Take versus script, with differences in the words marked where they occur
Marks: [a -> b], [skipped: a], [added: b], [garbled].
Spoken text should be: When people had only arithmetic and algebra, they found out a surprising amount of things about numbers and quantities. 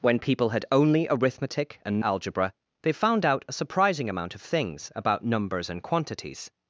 When people had only arithmetic and algebra, they found out a surprising amount of things about numbers and quantities.